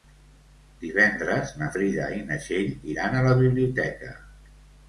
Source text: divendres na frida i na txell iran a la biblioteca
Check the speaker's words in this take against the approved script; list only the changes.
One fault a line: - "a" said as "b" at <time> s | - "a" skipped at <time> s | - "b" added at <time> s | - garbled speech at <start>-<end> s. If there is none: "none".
none